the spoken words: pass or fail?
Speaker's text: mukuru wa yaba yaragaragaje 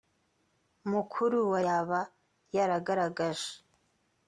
pass